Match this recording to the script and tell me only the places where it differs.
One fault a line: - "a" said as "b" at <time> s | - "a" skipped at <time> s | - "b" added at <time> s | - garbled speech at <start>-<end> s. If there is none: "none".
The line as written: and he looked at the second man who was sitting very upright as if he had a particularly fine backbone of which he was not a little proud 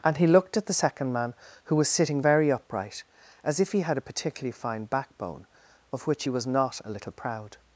none